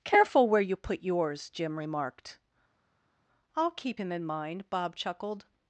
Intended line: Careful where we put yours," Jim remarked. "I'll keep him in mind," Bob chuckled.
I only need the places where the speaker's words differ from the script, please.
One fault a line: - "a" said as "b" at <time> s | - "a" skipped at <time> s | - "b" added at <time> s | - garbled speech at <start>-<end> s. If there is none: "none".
- "we" said as "you" at 0.6 s